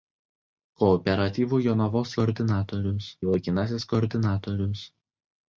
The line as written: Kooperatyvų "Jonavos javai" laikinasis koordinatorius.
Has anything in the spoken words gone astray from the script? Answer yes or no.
yes